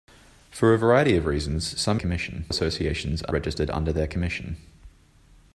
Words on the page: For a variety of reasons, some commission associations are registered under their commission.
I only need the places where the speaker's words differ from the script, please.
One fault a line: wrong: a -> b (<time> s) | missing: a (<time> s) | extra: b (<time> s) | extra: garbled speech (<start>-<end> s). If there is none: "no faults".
no faults